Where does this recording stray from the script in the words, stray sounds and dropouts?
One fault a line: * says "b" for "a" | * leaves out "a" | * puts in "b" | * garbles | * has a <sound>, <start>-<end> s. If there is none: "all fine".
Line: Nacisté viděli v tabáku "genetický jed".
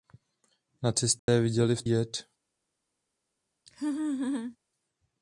* has a dropout, 1.2-1.3 s
* leaves out "tabáku genetický"
* has a laugh, 3.7-4.6 s